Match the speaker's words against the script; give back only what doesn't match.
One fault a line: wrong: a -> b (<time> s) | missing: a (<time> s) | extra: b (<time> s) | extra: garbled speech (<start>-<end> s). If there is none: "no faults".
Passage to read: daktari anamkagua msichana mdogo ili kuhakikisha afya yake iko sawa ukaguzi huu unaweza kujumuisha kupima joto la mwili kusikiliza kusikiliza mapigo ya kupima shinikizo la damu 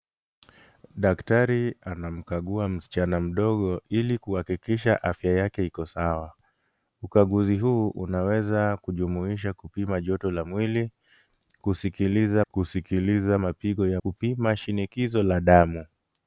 no faults